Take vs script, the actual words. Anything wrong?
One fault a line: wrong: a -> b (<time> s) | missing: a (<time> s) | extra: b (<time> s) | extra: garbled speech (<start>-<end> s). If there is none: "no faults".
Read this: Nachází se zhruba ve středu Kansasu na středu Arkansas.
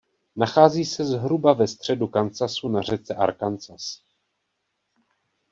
wrong: středu -> řece (2.8 s)